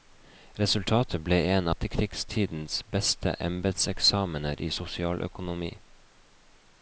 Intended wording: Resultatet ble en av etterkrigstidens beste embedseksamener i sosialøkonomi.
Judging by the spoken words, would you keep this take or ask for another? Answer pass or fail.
fail